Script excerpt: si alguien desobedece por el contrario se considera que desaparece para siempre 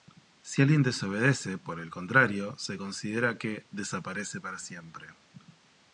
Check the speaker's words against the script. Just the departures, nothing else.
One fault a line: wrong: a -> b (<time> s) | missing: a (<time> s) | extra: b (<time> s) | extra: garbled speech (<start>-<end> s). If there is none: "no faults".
no faults